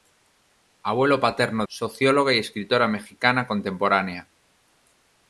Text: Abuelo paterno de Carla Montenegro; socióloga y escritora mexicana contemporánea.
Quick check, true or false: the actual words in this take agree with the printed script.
false